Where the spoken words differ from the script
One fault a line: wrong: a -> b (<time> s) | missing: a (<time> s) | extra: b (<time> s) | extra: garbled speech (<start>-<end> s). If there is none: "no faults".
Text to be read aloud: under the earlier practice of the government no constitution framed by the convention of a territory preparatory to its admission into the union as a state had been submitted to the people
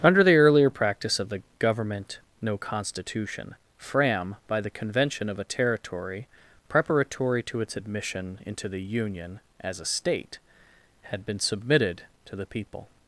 wrong: framed -> fram (3.8 s)